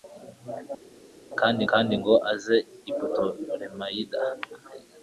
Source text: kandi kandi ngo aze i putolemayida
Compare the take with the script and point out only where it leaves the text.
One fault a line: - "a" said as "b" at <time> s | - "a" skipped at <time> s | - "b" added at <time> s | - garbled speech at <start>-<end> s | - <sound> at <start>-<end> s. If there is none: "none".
none